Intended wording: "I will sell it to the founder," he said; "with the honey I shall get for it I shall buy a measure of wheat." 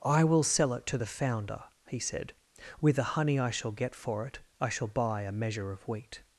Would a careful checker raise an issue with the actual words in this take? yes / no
no